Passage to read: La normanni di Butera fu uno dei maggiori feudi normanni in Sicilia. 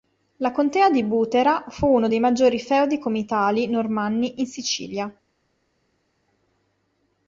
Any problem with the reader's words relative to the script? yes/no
yes